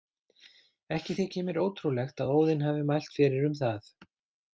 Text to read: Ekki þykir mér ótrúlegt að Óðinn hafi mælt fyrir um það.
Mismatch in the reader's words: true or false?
false